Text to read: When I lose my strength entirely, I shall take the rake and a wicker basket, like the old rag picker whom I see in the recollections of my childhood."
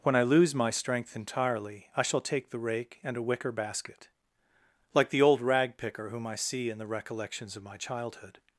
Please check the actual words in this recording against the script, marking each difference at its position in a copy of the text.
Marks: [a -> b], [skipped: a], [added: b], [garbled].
When I lose my strength entirely, I shall take the rake and a wicker basket, like the old rag picker whom I see in the recollections of my childhood."